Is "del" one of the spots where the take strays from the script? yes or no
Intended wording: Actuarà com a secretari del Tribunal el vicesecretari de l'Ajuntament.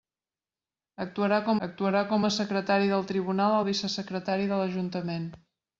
no